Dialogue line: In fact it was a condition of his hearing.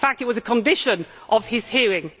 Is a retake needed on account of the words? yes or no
no